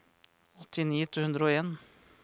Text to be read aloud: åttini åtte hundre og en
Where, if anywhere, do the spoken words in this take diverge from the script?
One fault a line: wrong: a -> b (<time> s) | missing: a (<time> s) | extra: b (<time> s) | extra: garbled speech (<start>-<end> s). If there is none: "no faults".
no faults